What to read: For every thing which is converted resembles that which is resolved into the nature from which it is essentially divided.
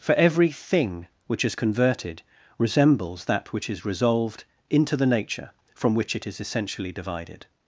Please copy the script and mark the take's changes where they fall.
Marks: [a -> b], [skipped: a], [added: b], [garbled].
For every thing which is converted resembles that which is resolved into the nature from which it is essentially divided.